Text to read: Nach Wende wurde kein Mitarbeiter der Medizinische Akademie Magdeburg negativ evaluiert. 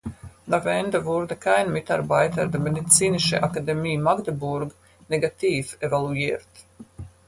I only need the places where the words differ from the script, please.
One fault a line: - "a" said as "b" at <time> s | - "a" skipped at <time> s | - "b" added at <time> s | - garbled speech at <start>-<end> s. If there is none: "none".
none